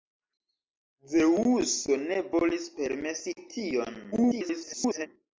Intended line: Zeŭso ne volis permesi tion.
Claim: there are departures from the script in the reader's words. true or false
true